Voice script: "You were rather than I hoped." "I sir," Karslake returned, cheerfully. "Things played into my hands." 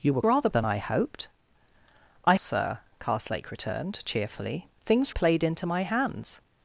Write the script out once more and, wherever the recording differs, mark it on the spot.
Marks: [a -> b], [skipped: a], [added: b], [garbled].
"You were rather than I hoped." "I sir," Karslake returned, cheerfully. "Things played into my hands."